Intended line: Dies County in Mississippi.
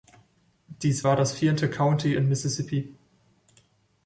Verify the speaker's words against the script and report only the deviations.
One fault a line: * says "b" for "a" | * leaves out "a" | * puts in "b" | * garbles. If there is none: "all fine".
* puts in "war das vierte"